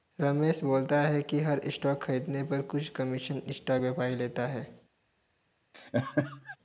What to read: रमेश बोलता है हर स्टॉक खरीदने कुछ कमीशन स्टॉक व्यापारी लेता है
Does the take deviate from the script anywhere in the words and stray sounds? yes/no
yes